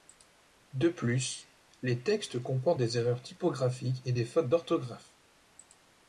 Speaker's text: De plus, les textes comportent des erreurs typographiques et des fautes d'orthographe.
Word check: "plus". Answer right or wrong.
right